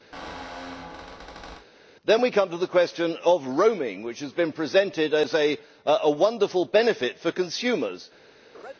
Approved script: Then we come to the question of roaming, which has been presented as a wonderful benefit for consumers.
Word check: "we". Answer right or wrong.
right